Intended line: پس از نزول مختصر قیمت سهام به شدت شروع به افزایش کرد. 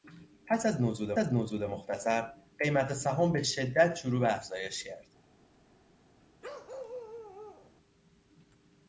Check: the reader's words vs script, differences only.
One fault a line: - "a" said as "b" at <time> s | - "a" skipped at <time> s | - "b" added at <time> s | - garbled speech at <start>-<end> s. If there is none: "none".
- "از نزول" added at 1.2 s